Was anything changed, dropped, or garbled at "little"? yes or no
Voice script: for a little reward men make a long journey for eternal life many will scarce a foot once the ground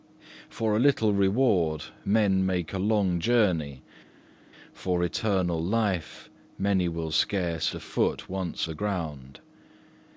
no